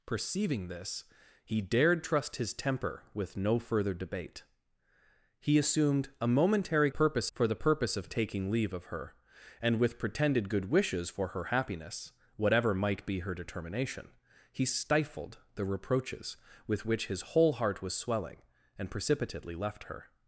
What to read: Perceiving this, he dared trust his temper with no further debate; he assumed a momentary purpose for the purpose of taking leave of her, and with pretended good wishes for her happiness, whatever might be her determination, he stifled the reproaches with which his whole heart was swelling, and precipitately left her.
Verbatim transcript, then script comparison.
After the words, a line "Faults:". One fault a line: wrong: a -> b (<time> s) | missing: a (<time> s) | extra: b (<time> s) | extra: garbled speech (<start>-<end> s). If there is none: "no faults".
Perceiving this, he dared trust his temper with no further debate; he assumed a momentary purpose for the purpose of taking leave of her, and with pretended good wishes for her happiness, whatever might be her determination, he stifled the reproaches with which his whole heart was swelling, and precipitately left her.
Faults:
no faults